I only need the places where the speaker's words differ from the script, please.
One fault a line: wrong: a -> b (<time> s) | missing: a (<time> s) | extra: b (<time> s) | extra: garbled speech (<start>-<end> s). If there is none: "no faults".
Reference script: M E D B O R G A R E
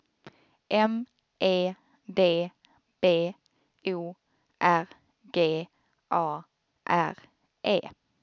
no faults